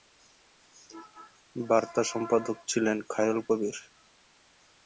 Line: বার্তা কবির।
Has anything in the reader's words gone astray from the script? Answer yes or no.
yes